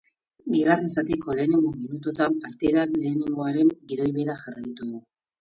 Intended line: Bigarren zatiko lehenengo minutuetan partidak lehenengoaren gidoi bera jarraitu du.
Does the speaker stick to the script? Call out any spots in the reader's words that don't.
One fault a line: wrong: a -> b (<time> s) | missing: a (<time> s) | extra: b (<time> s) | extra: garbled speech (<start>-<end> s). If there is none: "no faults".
no faults